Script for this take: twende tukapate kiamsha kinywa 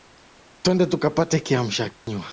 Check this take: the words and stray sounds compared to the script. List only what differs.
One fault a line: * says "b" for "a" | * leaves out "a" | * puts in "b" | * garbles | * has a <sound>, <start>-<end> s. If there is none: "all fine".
* has a dropout, 1.9-2.1 s